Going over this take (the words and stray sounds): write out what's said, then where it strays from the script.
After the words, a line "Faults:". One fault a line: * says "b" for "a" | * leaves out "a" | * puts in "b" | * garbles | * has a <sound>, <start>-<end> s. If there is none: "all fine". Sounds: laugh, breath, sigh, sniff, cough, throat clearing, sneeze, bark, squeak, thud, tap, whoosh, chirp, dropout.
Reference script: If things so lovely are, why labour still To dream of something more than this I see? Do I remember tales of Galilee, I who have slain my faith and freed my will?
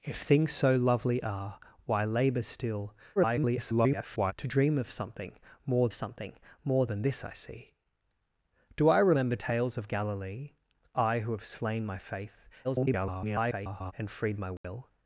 If things so lovely are, why labour still [garbled] To dream of something more something more than this I see? Do I remember tales of Galilee, I who have slain my faith [garbled] and freed my will?
Faults:
* garbles
* puts in "something more"
* garbles
* has a dropout, 14.6-14.6 s